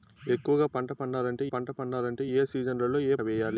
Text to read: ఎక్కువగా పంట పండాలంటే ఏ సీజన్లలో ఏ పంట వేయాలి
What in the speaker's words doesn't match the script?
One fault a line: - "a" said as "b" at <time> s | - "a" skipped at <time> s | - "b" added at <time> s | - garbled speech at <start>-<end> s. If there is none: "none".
- "పంట పండాలంటే" added at 1.5 s
- "పంట" skipped at 3.2 s